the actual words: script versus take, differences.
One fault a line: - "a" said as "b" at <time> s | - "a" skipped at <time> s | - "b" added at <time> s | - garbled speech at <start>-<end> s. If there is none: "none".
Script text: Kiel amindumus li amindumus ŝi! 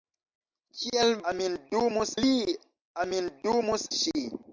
none